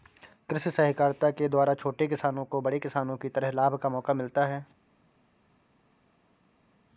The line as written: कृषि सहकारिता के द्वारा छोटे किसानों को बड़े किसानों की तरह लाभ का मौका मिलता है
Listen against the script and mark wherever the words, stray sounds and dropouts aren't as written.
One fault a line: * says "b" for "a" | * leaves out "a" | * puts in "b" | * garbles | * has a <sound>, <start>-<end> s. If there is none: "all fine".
all fine